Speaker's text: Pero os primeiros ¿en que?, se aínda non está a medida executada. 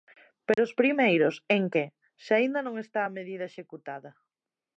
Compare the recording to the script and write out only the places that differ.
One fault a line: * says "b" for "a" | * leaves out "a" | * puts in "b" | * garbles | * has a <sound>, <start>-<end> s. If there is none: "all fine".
* has a dropout, 0.5-0.6 s